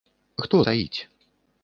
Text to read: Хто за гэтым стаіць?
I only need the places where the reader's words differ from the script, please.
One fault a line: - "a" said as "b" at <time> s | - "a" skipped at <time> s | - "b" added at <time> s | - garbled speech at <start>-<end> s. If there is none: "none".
- "за гэтым" skipped at 0.6 s